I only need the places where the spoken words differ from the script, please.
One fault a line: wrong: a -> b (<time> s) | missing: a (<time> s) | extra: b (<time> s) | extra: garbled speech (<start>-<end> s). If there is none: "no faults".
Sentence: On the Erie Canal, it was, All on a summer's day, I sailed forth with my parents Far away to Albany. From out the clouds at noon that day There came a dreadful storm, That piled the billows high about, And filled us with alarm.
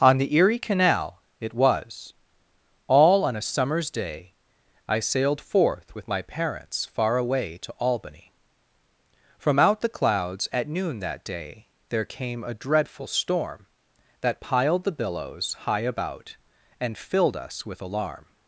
no faults